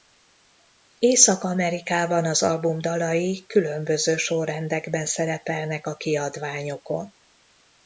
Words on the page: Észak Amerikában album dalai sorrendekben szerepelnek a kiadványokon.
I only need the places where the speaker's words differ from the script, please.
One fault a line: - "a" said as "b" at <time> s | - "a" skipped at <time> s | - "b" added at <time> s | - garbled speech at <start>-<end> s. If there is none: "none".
- "az" added at 2.2 s
- "különböző" added at 3.5 s